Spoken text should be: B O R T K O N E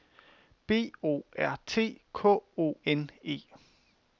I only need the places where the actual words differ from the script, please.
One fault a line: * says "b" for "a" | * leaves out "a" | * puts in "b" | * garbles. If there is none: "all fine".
all fine